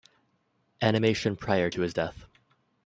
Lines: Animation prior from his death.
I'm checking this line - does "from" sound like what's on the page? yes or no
no